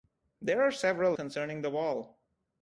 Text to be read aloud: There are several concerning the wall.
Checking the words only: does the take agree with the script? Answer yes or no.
yes